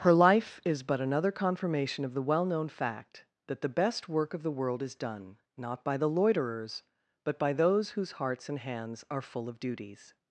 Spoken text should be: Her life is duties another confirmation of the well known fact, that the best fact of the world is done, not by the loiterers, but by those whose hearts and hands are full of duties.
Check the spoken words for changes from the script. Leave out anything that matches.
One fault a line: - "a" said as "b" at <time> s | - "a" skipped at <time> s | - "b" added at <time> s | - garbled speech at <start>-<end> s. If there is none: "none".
- "duties" said as "but" at 0.8 s
- "fact" said as "work" at 4.1 s